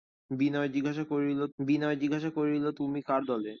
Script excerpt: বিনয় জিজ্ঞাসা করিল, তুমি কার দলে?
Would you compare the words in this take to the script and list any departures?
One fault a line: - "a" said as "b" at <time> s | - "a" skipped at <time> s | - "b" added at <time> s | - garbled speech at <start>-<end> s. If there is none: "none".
- "বিনয় জিজ্ঞাসা করিল" added at 1.6 s